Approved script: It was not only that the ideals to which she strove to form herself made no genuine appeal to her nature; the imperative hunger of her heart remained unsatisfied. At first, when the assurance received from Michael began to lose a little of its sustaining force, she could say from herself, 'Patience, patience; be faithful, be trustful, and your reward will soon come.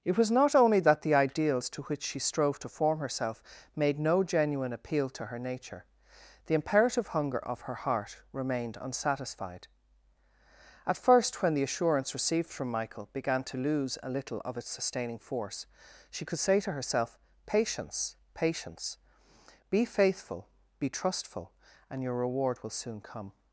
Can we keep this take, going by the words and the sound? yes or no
no